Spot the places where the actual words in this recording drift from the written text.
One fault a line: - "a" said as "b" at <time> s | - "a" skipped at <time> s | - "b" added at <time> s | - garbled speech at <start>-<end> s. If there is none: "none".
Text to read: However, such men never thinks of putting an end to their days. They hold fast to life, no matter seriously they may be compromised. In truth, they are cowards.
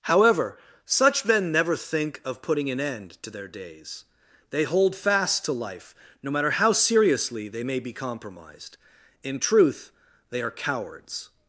- "thinks" said as "think" at 1.8 s
- "how" added at 6.5 s